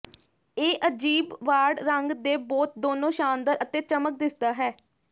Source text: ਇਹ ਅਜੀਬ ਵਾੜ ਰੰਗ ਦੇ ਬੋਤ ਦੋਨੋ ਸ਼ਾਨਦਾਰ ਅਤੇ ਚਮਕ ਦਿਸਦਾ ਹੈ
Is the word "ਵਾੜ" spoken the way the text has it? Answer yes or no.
yes